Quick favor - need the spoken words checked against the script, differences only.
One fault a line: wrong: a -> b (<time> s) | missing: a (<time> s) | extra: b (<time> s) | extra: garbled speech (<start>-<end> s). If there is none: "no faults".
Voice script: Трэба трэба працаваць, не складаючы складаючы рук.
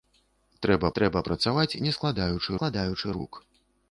no faults